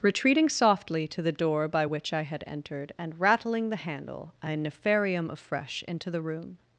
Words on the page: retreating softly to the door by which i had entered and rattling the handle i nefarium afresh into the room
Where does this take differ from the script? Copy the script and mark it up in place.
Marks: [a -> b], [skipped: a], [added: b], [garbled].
retreating softly to the door by which i had entered and rattling the handle i nefarium afresh into the room